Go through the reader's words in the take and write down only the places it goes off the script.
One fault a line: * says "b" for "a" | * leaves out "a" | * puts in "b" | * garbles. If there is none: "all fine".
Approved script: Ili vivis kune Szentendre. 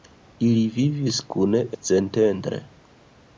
all fine